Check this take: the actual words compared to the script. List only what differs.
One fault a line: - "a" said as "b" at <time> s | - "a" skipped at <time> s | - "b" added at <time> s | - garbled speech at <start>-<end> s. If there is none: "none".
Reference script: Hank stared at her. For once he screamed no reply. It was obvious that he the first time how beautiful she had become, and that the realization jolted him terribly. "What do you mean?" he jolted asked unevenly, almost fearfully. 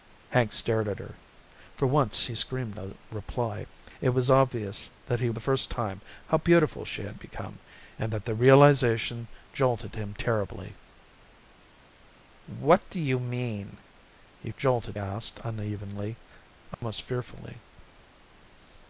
none